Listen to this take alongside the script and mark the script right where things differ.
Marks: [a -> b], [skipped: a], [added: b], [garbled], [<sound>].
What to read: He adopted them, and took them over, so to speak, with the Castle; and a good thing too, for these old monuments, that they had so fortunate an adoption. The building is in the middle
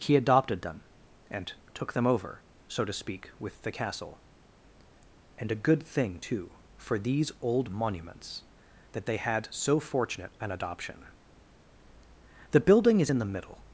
He adopted them, and took them over, so to speak, with the Castle; and a good thing too, for these old monuments, that they had so fortunate an adoption. The building is in the middle